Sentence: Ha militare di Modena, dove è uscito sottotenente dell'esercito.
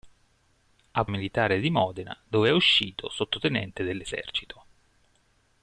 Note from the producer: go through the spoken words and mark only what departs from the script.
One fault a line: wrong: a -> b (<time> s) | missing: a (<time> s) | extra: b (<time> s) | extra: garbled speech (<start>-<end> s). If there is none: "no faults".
no faults